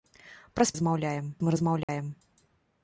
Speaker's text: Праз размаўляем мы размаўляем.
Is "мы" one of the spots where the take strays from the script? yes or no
no